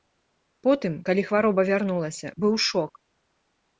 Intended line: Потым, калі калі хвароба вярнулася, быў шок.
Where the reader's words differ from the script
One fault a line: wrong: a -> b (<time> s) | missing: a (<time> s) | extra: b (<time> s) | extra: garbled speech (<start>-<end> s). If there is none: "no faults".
missing: калі (1.2 s)